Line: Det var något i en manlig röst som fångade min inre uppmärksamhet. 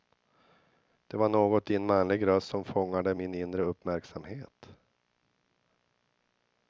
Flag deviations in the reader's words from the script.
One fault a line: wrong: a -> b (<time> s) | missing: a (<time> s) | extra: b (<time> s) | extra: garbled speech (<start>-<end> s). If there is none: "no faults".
no faults